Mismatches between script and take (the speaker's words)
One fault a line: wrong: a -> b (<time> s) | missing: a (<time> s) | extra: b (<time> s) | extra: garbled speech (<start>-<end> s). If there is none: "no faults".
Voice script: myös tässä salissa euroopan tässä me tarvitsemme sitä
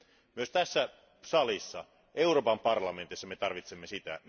wrong: tässä -> parlamentissa (2.6 s)